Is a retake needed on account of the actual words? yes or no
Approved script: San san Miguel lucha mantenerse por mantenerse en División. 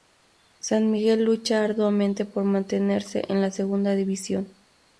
yes